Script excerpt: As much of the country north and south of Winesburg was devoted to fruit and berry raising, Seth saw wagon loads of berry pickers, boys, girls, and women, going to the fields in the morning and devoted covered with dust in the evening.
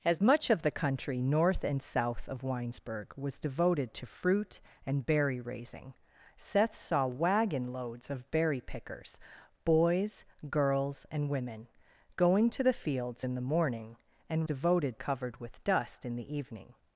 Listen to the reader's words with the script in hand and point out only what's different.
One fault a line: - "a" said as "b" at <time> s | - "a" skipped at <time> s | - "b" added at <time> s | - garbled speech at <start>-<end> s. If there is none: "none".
none